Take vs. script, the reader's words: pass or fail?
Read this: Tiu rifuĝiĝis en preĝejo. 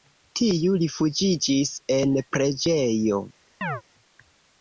pass